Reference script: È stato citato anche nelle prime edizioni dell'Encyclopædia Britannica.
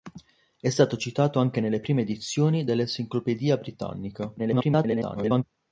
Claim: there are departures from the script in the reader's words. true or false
true